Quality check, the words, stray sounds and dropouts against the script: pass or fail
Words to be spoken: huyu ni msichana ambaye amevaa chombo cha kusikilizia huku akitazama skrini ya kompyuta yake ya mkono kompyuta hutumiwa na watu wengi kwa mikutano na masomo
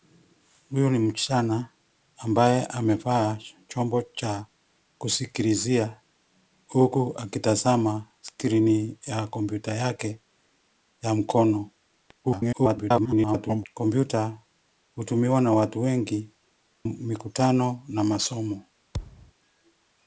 fail